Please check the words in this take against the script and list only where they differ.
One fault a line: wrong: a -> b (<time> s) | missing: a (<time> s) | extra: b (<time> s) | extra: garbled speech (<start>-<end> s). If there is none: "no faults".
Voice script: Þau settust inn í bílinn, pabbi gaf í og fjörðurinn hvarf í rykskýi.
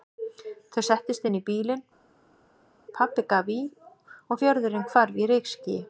no faults